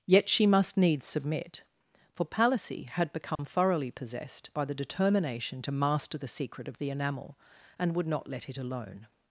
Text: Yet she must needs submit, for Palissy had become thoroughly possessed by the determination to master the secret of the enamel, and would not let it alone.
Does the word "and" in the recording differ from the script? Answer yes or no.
no